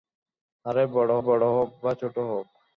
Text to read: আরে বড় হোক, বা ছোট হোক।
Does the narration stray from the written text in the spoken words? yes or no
yes